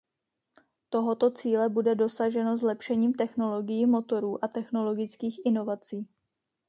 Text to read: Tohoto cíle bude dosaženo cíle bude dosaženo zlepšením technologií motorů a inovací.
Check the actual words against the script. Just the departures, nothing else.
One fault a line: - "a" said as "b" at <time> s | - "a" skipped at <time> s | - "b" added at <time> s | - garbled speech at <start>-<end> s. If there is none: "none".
- "cíle bude dosaženo" skipped at 2.6 s
- "technologických" added at 4.5 s